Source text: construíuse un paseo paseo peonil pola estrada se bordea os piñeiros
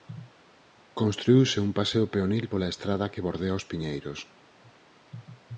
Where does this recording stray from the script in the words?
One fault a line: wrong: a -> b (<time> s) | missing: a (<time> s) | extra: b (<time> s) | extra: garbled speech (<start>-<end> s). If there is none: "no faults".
missing: paseo (2.0 s)
wrong: se -> que (3.1 s)